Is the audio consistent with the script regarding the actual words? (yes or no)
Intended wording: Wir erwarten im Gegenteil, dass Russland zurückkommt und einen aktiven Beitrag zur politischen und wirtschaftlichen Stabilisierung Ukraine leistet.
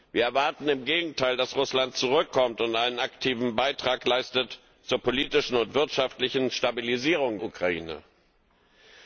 yes